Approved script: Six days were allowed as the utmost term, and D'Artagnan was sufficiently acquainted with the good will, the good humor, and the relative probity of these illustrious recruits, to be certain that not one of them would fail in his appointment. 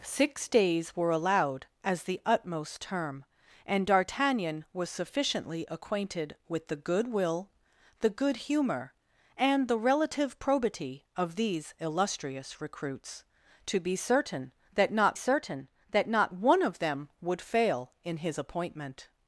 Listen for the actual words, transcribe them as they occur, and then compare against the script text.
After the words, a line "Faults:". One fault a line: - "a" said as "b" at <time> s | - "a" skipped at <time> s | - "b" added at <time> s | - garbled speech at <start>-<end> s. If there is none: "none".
Six days were allowed as the utmost term, and D'Artagnan was sufficiently acquainted with the good will, the good humor, and the relative probity of these illustrious recruits, to be certain that not certain that not one of them would fail in his appointment.
Faults:
- "certain that not" added at 15.1 s